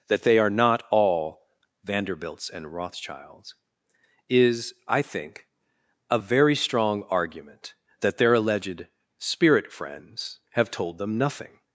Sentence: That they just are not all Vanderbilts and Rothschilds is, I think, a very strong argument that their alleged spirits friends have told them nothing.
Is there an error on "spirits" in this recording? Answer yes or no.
yes